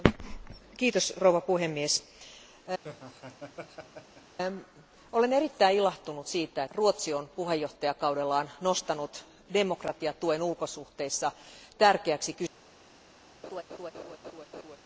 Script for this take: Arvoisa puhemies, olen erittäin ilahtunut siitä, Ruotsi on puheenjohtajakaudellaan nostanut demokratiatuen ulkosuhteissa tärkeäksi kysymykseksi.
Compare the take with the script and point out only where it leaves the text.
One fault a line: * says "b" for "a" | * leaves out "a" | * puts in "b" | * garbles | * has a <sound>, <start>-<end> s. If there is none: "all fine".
* has a laugh, 2.8-4.4 s
* has a laugh, 13.4-14.8 s